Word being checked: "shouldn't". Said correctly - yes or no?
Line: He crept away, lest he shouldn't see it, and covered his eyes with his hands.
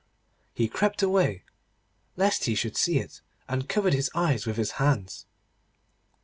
no